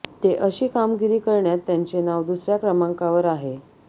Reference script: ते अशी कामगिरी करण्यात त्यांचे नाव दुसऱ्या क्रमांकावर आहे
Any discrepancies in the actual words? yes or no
no